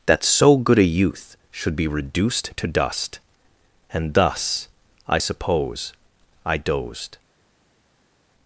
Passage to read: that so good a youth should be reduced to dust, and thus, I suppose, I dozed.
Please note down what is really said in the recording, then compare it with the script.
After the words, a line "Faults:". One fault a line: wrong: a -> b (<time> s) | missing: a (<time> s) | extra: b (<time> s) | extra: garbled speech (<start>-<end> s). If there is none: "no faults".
that so good a youth should be reduced to dust, and thus, I suppose, I dozed.
Faults:
no faults